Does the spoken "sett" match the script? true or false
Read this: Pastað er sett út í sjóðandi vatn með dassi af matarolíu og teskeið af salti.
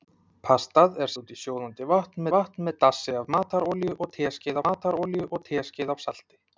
false